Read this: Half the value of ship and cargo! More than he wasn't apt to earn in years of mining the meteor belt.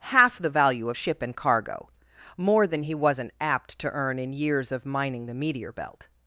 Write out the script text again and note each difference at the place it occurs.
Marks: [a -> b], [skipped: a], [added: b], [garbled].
Half the value of ship and cargo! More than he wasn't apt to earn in years of mining the meteor belt.